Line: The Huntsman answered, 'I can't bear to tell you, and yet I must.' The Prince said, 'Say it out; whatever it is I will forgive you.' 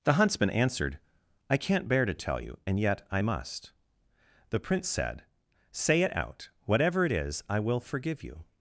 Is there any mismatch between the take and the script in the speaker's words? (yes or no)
no